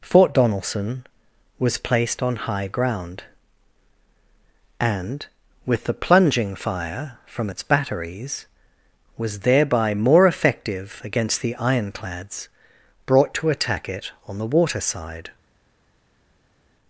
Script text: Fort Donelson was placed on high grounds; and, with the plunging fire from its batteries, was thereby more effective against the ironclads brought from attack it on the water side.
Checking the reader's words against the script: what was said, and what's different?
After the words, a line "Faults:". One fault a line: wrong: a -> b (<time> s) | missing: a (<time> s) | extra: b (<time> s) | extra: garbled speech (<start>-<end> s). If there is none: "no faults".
Fort Donelson was placed on high ground; and, with the plunging fire from its batteries, was thereby more effective against the ironclads brought to attack it on the water side.
Faults:
wrong: grounds -> ground (2.7 s)
wrong: from -> to (13.3 s)